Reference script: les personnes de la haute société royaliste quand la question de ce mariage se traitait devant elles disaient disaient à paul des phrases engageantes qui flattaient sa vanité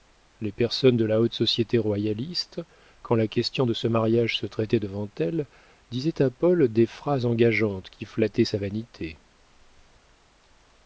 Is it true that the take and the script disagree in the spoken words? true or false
true